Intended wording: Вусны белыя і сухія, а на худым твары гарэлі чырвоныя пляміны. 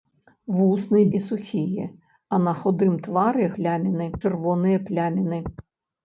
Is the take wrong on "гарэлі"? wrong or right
wrong